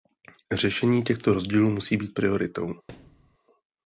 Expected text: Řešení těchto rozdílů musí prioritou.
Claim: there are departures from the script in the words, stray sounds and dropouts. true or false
true